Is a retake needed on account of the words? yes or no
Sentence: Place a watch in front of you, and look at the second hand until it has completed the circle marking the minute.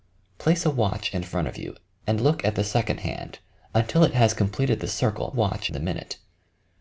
yes